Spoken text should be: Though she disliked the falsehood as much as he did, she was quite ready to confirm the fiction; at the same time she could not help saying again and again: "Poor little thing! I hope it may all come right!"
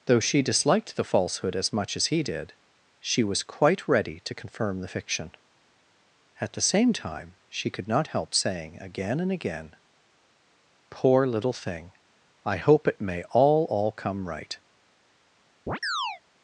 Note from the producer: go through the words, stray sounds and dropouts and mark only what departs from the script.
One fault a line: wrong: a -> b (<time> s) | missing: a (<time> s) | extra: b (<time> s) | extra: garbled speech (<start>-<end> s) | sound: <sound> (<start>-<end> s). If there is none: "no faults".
extra: all (13.7 s)
sound: chirp (15.7-16.2 s)